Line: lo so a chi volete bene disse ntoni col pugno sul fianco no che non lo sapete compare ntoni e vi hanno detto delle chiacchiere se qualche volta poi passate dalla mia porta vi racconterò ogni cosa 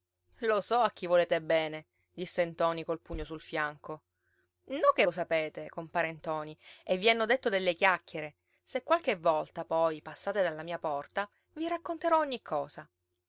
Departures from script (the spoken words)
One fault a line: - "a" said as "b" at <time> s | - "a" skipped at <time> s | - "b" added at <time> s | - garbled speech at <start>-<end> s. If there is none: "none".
- "non" skipped at 5.0 s